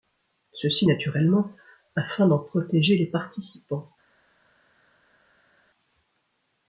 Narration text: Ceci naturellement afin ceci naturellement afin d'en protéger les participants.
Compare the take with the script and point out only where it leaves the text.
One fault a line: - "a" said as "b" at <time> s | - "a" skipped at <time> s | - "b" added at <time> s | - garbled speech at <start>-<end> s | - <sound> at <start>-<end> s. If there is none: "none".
- "ceci naturellement afin" skipped at 2.3 s